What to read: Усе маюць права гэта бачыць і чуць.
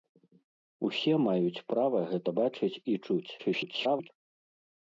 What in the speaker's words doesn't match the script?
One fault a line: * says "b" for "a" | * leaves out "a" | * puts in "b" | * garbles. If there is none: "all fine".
* garbles